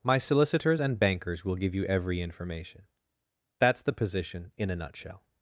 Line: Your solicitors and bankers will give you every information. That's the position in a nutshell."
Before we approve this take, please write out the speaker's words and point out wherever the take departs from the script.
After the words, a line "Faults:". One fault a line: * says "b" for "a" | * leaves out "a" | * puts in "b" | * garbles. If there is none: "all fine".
My solicitors and bankers will give you every information. That's the position in a nutshell."
Faults:
* says "My" for "Your"